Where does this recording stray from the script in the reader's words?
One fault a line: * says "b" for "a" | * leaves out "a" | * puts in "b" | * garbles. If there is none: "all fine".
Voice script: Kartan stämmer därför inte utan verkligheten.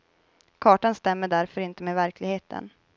* says "med" for "utan"